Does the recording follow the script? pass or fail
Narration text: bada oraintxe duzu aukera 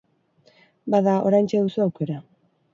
pass